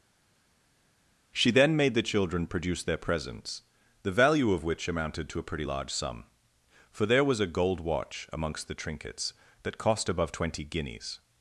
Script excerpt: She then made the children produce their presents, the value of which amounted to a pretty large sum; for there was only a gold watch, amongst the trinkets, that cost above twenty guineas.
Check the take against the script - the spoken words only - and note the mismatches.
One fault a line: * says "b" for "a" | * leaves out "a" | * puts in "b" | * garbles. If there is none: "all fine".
* leaves out "only"